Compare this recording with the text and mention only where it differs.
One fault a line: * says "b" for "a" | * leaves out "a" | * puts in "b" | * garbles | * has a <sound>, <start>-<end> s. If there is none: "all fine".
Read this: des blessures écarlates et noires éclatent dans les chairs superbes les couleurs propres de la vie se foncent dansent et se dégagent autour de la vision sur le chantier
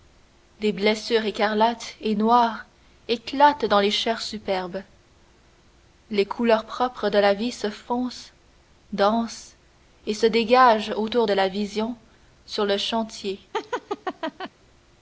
* has a laugh, 13.5-14.5 s